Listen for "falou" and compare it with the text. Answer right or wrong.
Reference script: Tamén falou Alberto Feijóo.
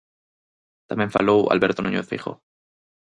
right